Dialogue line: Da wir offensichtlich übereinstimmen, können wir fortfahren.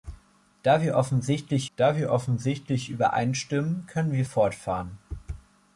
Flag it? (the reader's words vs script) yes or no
yes